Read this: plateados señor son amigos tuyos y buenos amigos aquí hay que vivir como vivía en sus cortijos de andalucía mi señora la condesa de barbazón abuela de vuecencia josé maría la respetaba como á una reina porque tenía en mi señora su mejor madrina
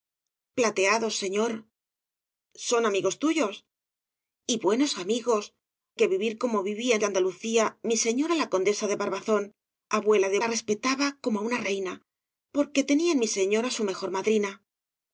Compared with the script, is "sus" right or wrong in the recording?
wrong